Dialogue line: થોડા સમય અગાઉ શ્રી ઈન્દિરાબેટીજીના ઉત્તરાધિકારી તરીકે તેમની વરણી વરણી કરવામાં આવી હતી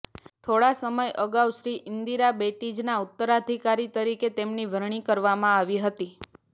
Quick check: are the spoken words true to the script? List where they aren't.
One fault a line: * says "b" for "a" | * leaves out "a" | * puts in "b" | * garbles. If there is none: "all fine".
* leaves out "વરણી"